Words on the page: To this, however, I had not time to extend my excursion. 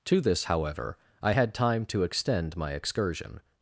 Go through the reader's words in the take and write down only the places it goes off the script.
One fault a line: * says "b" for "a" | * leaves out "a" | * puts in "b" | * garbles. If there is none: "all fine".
* leaves out "not"